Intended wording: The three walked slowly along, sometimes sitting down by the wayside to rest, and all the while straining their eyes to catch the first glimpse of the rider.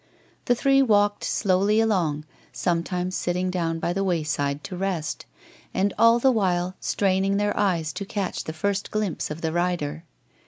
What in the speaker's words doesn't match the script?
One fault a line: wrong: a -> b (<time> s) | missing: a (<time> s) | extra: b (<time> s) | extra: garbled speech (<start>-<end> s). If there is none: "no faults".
no faults